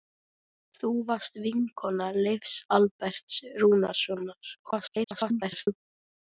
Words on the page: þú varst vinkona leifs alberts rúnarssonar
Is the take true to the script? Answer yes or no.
no